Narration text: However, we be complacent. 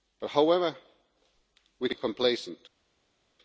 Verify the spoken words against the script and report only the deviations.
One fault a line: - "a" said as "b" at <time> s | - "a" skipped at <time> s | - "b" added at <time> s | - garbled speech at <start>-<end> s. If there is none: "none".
none